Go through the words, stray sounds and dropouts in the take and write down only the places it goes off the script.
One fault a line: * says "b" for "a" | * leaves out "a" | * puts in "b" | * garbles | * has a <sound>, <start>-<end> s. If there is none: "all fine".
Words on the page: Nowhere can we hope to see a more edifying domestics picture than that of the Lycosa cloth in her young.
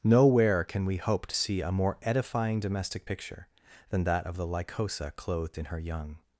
* says "domestic" for "domestics"
* says "clothed" for "cloth"